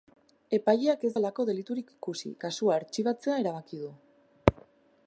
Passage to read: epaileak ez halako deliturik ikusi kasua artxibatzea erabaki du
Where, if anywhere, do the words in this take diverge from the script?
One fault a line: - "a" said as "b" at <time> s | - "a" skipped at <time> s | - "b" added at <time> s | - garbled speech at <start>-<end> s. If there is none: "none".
none